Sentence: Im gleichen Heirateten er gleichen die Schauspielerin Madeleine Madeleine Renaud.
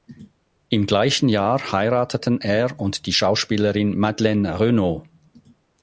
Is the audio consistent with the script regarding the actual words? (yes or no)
no